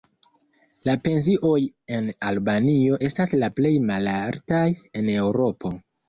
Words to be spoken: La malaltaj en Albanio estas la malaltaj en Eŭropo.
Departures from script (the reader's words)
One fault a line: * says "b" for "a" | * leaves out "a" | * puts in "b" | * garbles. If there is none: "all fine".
* says "pensioj" for "malaltaj"
* puts in "plej"